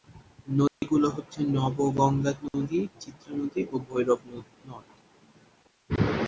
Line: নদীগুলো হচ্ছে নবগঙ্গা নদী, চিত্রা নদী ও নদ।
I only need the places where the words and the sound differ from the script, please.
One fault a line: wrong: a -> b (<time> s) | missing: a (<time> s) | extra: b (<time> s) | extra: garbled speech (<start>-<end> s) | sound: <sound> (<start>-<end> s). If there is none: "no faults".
sound: dropout (0.7-0.8 s)
extra: ভৈরব (3.9 s)